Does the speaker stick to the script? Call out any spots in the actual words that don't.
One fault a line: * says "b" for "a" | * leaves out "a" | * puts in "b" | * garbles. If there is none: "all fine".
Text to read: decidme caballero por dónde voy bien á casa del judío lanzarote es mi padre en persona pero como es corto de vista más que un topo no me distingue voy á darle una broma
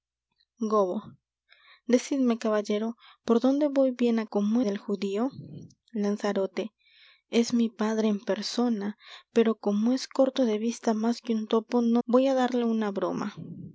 * says "como" for "casa"
* leaves out "me distingue"